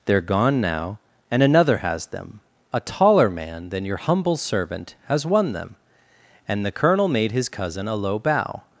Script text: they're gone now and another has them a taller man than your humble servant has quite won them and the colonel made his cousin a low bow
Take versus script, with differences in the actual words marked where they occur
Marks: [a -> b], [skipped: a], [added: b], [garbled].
they're gone now and another has them a taller man than your humble servant has [skipped: quite] won them and the colonel made his cousin a low bow